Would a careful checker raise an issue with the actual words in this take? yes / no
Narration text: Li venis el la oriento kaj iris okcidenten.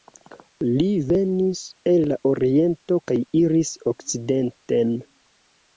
no